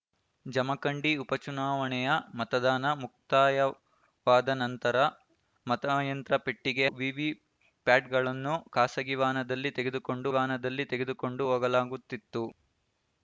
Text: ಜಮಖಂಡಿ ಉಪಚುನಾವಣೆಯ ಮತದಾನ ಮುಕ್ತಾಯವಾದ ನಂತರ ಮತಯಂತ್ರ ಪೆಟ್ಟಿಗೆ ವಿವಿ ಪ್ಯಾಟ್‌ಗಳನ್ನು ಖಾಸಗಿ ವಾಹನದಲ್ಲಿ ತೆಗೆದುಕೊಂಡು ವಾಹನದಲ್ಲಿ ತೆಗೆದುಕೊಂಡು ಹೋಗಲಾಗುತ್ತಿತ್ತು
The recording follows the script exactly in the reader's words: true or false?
true